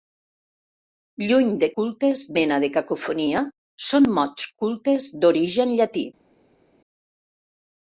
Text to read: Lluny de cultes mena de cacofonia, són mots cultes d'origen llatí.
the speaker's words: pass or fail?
pass